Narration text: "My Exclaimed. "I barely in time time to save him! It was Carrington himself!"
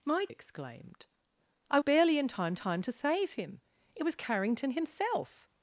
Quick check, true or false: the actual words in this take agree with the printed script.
true